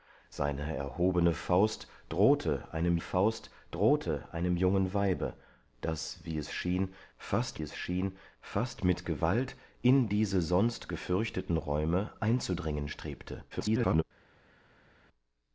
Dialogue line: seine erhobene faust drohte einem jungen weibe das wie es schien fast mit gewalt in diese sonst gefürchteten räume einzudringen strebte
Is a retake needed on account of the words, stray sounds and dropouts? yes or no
yes